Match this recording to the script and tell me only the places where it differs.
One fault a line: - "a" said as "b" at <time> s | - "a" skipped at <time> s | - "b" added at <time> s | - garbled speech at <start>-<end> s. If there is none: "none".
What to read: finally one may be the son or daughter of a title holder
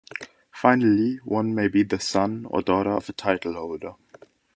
none